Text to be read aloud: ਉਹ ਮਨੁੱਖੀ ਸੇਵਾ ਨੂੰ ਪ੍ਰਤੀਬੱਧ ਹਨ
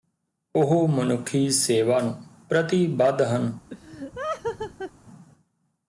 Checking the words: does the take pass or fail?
pass